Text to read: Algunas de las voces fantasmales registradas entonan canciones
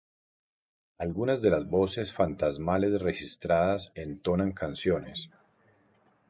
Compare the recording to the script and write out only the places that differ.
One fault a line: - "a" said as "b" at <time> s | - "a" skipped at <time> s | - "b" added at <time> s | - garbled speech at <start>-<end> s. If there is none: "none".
none